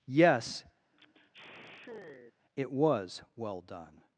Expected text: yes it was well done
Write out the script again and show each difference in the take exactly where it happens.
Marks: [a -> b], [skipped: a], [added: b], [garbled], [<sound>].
yes [sigh] it was well done